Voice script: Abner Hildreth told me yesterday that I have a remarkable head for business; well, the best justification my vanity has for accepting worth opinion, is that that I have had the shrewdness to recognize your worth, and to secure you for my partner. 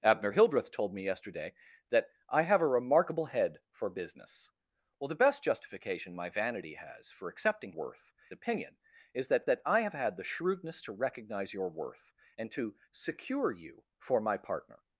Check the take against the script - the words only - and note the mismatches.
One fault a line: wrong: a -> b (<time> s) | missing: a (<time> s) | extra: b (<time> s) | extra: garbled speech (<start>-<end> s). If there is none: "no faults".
no faults